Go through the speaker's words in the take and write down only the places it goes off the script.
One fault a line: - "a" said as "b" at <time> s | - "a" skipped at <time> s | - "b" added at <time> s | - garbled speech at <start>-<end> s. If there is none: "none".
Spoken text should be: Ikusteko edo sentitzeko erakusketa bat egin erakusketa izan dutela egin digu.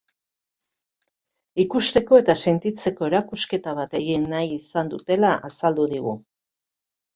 - "edo" said as "eta" at 2.2 s
- "erakusketa" said as "nahi" at 4.4 s
- "egin" said as "azaldu" at 5.5 s